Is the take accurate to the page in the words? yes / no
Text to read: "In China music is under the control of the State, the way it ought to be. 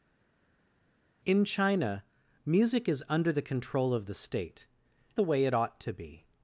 yes